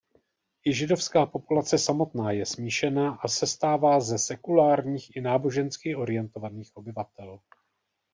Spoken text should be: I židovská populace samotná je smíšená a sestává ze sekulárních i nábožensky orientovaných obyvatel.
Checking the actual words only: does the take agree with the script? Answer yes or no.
yes